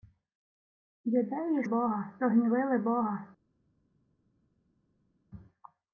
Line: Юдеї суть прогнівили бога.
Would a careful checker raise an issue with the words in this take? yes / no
yes